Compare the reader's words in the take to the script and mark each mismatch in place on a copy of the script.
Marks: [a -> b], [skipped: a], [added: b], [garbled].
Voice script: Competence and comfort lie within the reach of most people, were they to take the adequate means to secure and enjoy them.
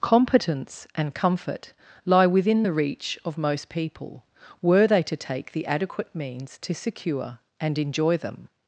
Competence and comfort lie within the reach of most people, were they to take the adequate means to secure and enjoy them.